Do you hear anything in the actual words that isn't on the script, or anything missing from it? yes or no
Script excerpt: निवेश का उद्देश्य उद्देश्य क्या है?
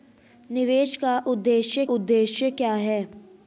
no